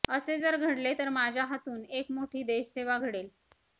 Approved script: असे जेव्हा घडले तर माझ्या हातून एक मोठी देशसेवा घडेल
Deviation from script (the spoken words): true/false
true